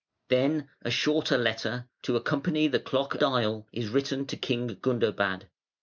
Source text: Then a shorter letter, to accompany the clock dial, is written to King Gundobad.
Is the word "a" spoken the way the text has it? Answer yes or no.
yes